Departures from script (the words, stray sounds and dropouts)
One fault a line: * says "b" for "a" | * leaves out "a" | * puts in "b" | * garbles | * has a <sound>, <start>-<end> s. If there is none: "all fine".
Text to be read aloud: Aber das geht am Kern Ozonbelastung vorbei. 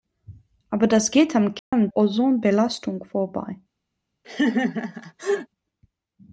* has a dropout, 1.6-1.7 s
* has a laugh, 4.2-5.5 s